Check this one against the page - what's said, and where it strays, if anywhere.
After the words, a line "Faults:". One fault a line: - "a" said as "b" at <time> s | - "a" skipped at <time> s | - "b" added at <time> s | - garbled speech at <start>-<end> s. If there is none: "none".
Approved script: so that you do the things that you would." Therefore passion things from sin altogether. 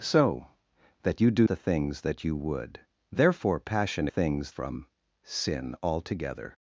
so that you do the things that you would." Therefore passion things from sin altogether.
Faults:
none